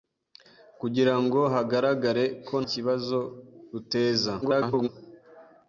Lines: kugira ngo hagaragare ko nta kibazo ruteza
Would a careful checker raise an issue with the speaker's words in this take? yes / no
yes